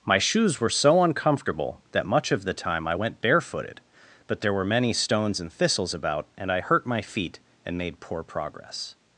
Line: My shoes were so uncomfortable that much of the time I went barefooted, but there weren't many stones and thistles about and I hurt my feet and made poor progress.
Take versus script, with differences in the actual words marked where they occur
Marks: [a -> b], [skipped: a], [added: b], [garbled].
My shoes were so uncomfortable that much of the time I went barefooted, but there [weren't -> were] many stones and thistles about and I hurt my feet and made poor progress.